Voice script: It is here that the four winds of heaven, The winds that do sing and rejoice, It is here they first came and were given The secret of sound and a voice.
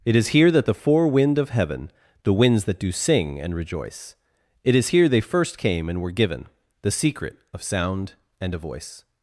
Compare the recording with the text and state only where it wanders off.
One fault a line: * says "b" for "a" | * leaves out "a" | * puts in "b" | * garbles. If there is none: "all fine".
* says "wind" for "winds"